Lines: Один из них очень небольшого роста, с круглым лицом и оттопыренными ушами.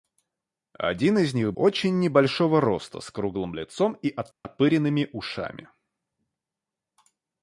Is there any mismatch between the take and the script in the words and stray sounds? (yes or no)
yes